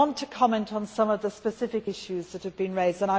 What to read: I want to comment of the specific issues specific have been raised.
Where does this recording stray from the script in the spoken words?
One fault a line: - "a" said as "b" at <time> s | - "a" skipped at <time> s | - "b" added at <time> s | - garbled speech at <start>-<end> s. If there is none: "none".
- "on some" added at 0.7 s
- "specific" said as "that" at 2.3 s